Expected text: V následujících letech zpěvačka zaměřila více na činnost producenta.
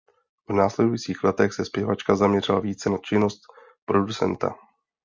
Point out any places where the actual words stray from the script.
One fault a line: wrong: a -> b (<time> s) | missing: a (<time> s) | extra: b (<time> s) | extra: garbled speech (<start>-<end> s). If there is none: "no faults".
extra: se (1.5 s)